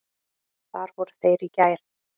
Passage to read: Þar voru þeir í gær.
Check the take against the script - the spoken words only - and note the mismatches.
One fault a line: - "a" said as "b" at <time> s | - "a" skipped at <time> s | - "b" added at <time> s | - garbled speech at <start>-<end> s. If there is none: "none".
none